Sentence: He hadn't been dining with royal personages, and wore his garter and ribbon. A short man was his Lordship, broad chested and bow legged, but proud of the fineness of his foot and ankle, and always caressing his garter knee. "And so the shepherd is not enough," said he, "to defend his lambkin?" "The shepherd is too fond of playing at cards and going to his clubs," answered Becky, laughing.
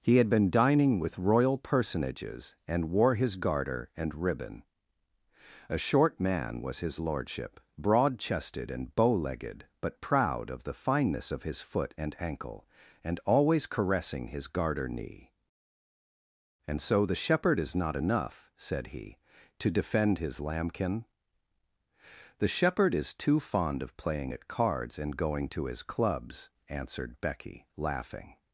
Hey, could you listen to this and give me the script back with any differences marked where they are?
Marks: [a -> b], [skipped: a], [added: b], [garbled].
He [hadn't -> had] been dining with royal personages, and wore his garter and ribbon. A short man was his Lordship, broad chested and bow legged, but proud of the fineness of his foot and ankle, and always caressing his garter knee. "And so the shepherd is not enough," said he, "to defend his lambkin?" "The shepherd is too fond of playing at cards and going to his clubs," answered Becky, laughing.